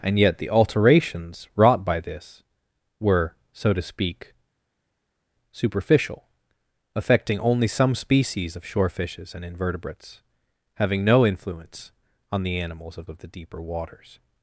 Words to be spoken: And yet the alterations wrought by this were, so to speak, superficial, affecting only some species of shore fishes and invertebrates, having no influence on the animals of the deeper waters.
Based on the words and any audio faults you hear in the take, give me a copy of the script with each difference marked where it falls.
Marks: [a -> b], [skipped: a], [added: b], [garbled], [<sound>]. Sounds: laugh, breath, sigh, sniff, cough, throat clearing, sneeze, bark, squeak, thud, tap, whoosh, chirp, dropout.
And yet the alterations wrought by this were, so to speak, superficial, affecting only some species of shore fishes and invertebrates, having no influence on the animals of [added: of] the deeper waters.